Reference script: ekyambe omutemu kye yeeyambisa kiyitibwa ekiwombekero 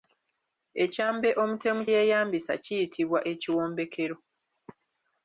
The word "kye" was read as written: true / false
false